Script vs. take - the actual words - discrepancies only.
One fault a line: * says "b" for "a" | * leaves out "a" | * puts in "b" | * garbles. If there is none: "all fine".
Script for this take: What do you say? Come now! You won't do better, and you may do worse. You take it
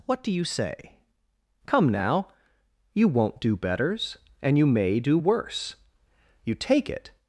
* says "betters" for "better"